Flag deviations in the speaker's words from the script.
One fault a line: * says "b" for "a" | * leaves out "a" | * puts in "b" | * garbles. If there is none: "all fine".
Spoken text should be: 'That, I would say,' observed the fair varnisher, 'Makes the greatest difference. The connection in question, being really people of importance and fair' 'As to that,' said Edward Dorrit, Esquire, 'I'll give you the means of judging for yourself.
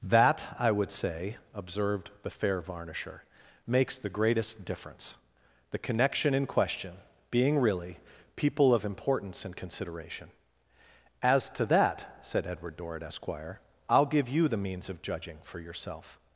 * says "consideration" for "fair"